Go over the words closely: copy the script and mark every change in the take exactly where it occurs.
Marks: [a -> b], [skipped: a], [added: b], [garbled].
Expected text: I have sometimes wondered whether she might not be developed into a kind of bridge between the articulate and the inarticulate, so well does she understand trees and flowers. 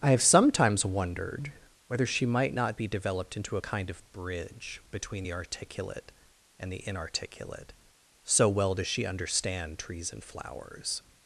I have sometimes wondered whether she might not be developed into a kind of bridge between the articulate and the inarticulate, so well does she understand trees and flowers.